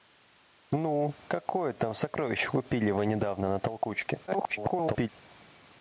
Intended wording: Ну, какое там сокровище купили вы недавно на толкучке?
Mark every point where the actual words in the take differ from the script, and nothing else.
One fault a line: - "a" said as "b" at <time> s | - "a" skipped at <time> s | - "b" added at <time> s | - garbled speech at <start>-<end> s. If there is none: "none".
- garbled speech at 4.3-5.1 s